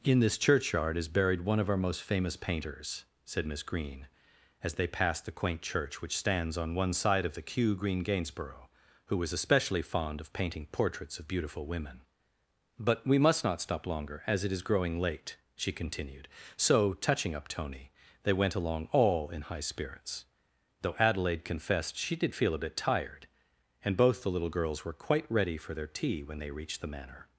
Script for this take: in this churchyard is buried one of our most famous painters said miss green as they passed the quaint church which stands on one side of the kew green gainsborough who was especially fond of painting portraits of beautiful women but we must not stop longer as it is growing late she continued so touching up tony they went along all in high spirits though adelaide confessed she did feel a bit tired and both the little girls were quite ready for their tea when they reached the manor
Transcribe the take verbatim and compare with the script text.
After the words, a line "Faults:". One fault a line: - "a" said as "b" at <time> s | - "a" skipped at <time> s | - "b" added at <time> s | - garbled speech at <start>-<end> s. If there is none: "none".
in this churchyard is buried one of our most famous painters said miss green as they passed the quaint church which stands on one side of the kew green gainsborough who was especially fond of painting portraits of beautiful women but we must not stop longer as it is growing late she continued so touching up tony they went along all in high spirits though adelaide confessed she did feel a bit tired and both the little girls were quite ready for their tea when they reached the manor
Faults:
none